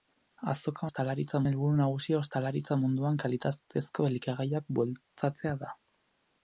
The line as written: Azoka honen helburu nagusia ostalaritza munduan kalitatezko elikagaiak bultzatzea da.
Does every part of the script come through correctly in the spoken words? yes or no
no